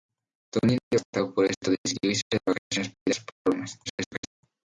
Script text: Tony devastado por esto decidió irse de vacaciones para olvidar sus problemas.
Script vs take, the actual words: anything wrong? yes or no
yes